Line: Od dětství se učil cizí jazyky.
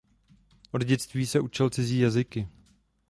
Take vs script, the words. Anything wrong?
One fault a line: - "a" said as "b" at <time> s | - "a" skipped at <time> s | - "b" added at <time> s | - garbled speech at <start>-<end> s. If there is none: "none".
none